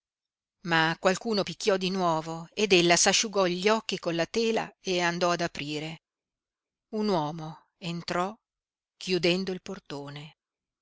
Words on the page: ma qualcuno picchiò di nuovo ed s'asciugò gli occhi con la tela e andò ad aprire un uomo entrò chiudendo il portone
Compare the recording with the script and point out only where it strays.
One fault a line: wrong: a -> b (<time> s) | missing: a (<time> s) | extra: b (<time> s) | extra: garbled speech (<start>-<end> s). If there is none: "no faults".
extra: ella (2.7 s)